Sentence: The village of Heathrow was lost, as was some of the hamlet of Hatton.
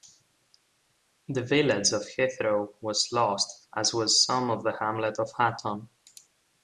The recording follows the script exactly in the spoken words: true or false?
true